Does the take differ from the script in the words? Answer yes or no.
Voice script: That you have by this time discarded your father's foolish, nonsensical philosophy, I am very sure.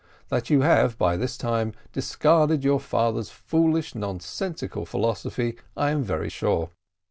no